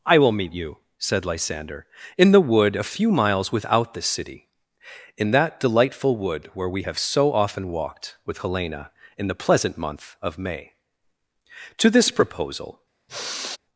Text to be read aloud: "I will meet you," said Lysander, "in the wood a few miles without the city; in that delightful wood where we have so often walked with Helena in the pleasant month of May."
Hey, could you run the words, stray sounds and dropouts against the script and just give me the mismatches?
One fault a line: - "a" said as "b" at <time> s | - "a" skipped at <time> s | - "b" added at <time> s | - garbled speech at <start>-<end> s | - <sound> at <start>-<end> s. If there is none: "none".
- "To this proposal" added at 11.8 s
- sigh at 13.1-13.6 s